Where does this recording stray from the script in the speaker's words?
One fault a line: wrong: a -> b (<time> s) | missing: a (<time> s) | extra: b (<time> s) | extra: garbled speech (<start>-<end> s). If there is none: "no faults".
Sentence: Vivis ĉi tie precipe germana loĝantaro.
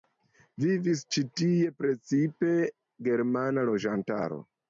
no faults